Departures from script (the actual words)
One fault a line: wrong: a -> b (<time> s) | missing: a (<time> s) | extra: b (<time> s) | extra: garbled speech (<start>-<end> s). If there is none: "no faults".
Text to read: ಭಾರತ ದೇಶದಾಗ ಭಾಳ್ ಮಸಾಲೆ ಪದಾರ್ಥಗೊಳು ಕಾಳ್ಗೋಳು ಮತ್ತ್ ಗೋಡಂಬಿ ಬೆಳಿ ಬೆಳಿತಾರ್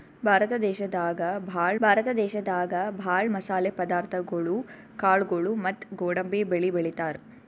extra: ಭಾರತ ದೇಶದಾಗ ಭಾಳ್ (1.8 s)